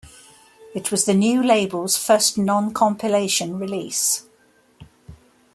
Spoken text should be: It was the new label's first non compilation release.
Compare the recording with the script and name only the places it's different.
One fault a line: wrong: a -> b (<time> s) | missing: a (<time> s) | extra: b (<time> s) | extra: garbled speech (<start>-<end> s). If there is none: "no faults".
no faults